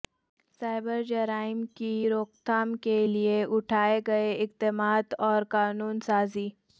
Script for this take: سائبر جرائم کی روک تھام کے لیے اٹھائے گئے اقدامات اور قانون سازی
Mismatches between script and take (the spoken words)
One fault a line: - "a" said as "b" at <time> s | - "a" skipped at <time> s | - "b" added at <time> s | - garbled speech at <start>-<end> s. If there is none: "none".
none